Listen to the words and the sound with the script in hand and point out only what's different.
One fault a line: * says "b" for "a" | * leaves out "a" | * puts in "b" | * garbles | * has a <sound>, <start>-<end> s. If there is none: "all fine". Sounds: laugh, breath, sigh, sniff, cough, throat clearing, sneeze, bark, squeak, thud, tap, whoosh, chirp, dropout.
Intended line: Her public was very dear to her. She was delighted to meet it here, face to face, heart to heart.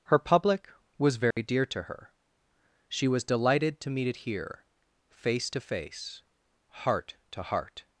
* has a dropout, 1.3-1.4 s